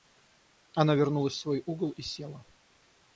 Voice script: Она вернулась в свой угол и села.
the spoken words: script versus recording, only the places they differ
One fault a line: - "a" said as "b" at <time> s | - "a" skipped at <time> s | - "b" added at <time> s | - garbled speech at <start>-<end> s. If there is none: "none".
none